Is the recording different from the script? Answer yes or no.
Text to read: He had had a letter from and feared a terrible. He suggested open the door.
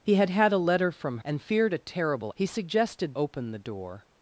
no